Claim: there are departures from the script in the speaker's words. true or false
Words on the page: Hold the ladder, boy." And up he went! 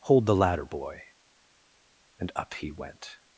false